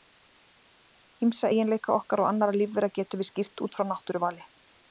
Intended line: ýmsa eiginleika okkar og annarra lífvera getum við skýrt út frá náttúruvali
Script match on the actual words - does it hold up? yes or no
yes